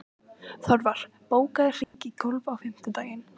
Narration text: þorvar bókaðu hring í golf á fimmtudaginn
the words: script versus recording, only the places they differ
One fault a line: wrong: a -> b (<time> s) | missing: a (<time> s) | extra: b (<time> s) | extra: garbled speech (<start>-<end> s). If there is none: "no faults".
no faults